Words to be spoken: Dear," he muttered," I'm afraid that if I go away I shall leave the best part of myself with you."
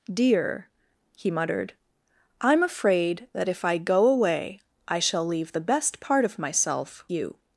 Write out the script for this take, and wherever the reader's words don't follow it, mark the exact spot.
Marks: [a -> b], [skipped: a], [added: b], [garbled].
Dear," he muttered," I'm afraid that if I go away I shall leave the best part of myself [skipped: with] you."